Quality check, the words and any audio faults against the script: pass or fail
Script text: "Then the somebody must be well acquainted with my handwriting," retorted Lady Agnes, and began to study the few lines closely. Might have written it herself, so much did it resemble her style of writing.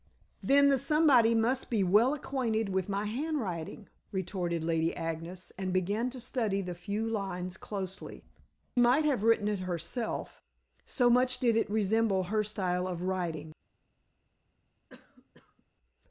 fail